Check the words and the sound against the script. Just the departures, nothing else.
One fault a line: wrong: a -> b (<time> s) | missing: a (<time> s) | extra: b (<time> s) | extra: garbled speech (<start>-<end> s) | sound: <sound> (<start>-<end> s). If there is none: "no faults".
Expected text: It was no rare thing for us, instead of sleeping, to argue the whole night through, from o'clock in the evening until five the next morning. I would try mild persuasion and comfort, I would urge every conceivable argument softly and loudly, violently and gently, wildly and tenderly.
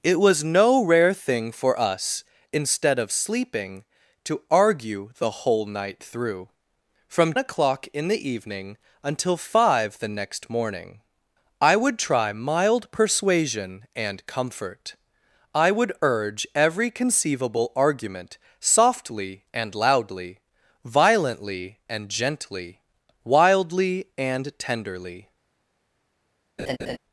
sound: laugh (26.6-27.0 s)